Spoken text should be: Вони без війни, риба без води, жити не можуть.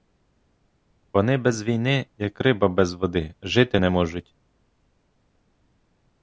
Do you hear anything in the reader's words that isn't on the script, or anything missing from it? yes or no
yes